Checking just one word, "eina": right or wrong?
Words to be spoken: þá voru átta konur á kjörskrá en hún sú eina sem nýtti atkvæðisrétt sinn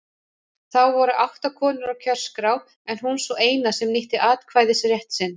right